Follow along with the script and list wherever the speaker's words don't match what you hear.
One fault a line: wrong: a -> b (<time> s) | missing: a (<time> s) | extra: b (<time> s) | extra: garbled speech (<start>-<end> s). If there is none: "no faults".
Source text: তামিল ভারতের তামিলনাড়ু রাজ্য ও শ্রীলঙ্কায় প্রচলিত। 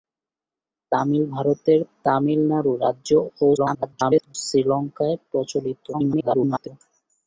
extra: garbled speech (3.6-4.4 s)
extra: garbled speech (5.9-6.7 s)